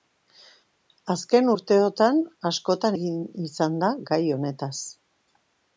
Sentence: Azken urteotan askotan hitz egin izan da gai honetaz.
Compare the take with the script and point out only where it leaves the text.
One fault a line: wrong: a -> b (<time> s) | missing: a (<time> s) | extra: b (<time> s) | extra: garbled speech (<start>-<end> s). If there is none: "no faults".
missing: hitz (3.0 s)